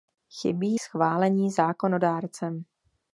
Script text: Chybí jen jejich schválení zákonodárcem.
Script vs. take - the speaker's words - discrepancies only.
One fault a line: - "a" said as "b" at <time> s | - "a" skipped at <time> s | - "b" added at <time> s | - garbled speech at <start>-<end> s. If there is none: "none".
- "jen jejich" skipped at 0.8 s